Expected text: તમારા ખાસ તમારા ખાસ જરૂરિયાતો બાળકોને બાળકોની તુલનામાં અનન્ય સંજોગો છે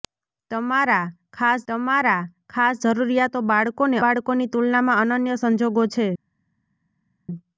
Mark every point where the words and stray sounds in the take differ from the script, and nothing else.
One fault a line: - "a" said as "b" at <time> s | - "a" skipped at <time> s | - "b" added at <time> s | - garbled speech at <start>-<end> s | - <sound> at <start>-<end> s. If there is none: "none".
none